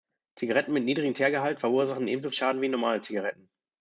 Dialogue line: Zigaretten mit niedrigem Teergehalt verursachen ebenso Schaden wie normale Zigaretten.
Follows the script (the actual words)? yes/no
yes